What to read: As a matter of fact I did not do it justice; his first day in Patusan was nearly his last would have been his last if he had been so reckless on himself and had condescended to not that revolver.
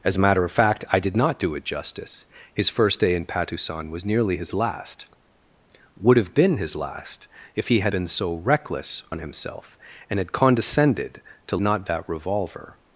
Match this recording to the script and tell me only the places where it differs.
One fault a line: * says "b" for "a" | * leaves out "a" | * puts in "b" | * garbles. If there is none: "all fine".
all fine